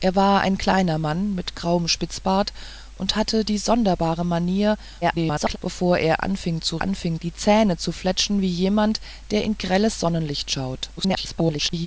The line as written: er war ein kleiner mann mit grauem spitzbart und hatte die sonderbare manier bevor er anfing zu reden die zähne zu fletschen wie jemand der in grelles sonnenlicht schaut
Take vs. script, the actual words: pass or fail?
fail